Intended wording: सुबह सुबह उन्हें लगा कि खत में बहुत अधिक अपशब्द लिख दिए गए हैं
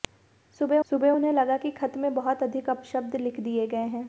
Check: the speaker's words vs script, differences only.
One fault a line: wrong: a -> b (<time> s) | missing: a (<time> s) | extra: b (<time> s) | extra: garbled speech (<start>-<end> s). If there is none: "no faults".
no faults